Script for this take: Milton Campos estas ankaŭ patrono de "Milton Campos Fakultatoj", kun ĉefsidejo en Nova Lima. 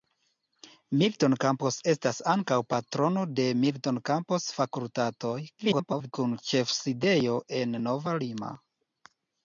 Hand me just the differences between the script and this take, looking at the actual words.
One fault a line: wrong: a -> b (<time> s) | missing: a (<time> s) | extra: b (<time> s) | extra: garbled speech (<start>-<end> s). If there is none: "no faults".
extra: garbled speech (5.6-6.1 s)